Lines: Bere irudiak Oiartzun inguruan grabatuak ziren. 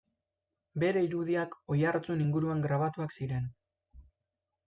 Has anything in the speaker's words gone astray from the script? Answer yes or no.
no